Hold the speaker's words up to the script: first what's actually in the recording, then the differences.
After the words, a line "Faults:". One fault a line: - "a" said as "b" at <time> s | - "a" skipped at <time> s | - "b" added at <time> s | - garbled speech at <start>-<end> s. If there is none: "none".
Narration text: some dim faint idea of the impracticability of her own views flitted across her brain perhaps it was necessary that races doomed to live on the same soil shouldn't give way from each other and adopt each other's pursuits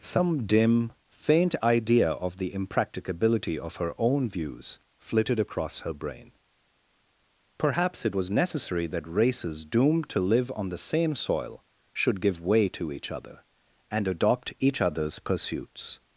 some dim faint idea of the impracticability of her own views flitted across her brain perhaps it was necessary that races doomed to live on the same soil should give way to each other and adopt each other's pursuits
Faults:
- "shouldn't" said as "should" at 11.9 s
- "from" said as "to" at 12.7 s